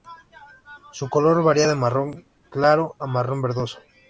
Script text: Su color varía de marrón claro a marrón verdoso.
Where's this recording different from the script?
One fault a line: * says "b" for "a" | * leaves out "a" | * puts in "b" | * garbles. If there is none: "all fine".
all fine